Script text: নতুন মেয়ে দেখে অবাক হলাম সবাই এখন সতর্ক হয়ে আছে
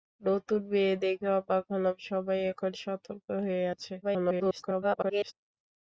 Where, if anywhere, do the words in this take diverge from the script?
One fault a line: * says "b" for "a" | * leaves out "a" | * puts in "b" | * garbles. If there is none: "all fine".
* garbles